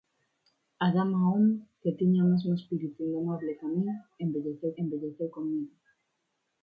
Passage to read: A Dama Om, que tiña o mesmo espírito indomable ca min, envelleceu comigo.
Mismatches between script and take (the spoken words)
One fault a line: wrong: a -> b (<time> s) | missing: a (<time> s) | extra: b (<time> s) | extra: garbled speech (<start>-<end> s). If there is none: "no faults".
extra: envelleceu (4.8 s)